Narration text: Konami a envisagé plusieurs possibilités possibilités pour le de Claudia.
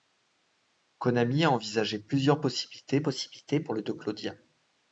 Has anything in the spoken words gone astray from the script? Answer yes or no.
no